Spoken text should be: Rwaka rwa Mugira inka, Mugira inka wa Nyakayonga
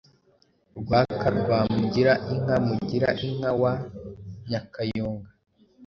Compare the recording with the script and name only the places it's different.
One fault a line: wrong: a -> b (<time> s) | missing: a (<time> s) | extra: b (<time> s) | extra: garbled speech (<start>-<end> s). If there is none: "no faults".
no faults